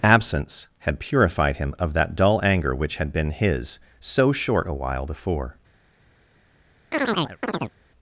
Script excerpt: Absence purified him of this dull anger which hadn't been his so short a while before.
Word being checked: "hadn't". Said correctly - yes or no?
no